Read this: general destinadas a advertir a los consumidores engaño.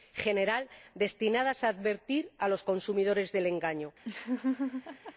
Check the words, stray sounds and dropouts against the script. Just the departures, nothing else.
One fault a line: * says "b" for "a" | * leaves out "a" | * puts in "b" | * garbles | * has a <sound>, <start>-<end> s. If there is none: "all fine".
* puts in "del"
* has a laugh, 4.0-5.1 s